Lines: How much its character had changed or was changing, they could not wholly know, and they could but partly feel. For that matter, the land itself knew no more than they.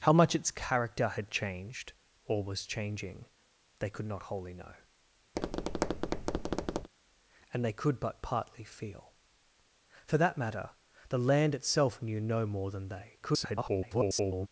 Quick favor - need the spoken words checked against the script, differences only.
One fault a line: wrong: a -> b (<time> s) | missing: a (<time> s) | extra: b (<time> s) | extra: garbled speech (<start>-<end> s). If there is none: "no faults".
extra: garbled speech (13.2-14.5 s)